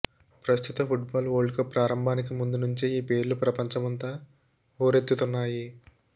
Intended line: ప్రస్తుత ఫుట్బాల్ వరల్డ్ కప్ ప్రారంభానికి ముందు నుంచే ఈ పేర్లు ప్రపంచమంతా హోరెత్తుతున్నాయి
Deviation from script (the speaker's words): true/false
false